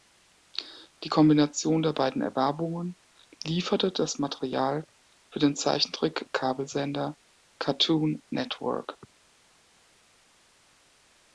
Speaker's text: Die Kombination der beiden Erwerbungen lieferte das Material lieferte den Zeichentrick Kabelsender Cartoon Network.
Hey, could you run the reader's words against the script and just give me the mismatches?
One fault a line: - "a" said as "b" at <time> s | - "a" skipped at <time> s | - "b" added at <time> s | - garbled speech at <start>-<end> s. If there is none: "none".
- "lieferte" said as "für" at 5.3 s